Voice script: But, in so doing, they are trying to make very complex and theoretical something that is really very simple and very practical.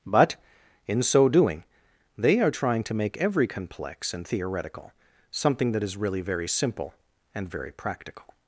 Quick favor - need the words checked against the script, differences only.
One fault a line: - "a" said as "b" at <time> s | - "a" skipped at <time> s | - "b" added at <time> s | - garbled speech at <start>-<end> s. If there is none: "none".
- "very" said as "every" at 3.2 s